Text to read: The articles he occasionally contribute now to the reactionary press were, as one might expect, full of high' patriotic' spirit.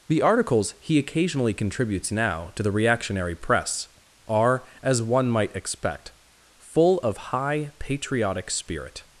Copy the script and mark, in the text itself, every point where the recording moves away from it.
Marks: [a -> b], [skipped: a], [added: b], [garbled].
The articles he occasionally [contribute -> contributes] now to the reactionary press [were, -> are] as one might expect, full of high' patriotic' spirit.